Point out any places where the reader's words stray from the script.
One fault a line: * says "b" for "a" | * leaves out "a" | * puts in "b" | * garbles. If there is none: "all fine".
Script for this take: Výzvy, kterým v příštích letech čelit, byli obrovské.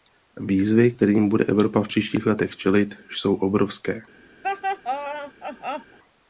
* puts in "bude Evropa"
* says "jsou" for "byli"